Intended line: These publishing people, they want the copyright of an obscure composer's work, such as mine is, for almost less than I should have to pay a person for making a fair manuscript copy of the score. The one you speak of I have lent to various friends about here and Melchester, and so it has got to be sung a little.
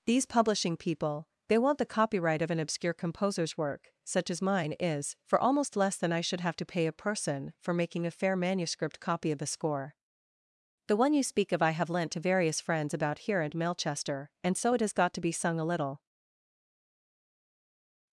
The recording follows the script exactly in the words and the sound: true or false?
true